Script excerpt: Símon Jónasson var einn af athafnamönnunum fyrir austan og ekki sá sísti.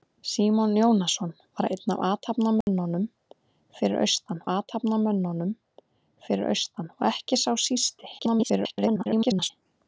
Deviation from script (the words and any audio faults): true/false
true